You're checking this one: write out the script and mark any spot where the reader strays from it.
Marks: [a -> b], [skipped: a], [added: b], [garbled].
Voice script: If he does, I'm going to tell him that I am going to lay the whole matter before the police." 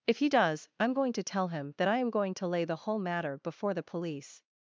If he does, I'm going to tell him that I am going to lay the whole matter before the police."